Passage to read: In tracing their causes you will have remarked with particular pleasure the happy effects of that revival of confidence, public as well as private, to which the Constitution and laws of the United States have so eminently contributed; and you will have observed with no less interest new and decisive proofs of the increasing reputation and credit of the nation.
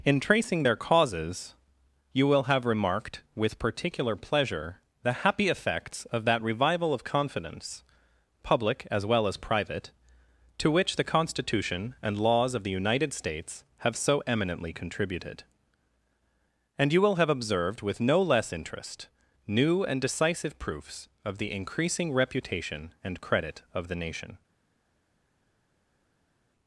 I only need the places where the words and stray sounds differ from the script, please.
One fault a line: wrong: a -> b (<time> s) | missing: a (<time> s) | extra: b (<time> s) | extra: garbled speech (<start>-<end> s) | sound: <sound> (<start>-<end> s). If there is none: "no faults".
no faults